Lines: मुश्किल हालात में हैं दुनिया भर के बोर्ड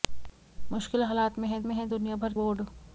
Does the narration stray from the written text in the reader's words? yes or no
yes